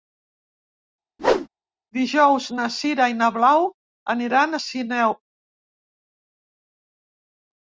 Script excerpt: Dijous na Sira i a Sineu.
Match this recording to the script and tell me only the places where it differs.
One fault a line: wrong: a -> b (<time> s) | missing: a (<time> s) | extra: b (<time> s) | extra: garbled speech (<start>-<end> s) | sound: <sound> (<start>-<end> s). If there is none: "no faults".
sound: whoosh (1.2-1.5 s)
extra: na Blau aniran (3.2 s)